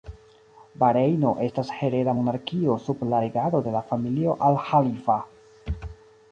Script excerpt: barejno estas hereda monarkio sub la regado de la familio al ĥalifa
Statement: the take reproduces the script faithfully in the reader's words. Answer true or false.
true